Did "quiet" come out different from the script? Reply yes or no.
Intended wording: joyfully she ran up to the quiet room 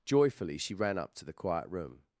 no